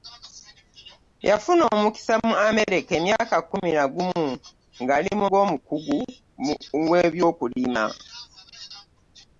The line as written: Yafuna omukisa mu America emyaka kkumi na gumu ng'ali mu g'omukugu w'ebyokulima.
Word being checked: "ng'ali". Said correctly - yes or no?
yes